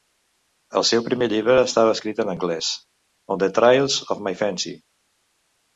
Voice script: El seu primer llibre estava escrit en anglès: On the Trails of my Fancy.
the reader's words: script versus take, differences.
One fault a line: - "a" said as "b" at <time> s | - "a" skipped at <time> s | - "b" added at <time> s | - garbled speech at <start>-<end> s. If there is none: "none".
none